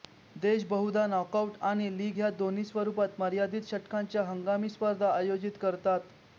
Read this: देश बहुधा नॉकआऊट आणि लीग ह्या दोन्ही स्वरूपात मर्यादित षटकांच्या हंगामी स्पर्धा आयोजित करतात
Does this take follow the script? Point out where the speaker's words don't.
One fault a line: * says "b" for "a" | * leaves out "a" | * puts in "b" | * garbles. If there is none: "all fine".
all fine